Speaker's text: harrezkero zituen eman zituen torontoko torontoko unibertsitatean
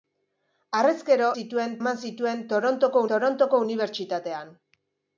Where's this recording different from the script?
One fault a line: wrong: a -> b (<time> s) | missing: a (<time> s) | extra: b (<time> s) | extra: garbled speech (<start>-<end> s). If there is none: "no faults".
no faults